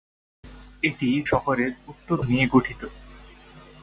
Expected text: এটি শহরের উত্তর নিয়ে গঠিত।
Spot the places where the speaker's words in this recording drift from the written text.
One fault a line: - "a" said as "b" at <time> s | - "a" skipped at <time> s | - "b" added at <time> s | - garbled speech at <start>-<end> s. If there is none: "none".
none